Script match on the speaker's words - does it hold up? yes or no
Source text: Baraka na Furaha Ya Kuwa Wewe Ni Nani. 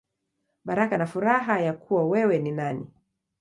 yes